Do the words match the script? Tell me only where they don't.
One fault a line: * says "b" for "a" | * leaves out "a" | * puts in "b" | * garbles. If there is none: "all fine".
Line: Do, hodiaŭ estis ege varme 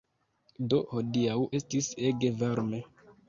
all fine